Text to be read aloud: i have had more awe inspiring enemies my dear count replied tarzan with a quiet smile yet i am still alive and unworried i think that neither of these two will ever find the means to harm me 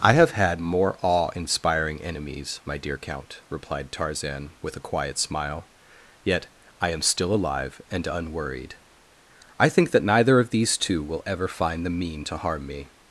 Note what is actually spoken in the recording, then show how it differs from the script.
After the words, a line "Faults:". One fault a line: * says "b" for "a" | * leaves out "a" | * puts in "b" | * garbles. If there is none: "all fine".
i have had more awe inspiring enemies my dear count replied tarzan with a quiet smile yet i am still alive and unworried i think that neither of these two will ever find the mean to harm me
Faults:
* says "mean" for "means"